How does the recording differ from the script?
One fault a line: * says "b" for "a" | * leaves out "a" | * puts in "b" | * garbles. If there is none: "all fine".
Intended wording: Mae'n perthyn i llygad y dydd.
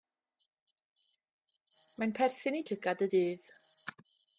all fine